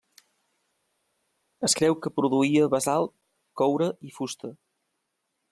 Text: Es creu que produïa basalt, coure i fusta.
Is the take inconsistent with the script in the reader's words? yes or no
no